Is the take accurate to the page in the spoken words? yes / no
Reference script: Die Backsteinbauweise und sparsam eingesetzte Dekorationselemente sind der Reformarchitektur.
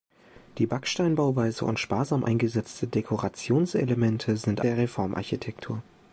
yes